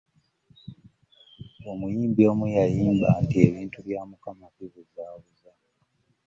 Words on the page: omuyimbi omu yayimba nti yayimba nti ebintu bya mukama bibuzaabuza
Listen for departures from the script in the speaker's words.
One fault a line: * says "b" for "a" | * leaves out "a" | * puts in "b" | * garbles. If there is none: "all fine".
* leaves out "yayimba nti"